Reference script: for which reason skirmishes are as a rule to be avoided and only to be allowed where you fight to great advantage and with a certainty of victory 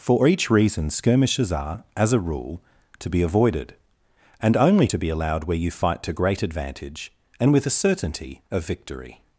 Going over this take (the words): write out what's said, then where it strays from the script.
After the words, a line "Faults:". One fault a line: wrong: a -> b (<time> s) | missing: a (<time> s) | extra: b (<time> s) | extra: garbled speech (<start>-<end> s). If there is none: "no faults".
for each reason skirmishes are as a rule to be avoided and only to be allowed where you fight to great advantage and with a certainty of victory
Faults:
wrong: which -> each (0.3 s)